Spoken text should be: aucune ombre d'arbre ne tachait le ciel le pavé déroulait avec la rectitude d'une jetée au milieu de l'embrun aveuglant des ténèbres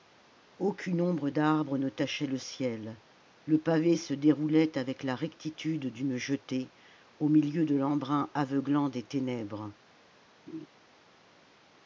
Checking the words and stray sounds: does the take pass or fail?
fail